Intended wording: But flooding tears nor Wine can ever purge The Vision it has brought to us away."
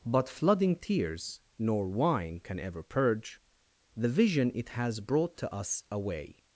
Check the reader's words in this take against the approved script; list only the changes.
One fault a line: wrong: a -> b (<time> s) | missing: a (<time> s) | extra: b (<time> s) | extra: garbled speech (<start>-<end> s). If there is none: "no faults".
no faults